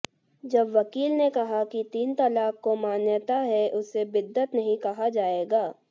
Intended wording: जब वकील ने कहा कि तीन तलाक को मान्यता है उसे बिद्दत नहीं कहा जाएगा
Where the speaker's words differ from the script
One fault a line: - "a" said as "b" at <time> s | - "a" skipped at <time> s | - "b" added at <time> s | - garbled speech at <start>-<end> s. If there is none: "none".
none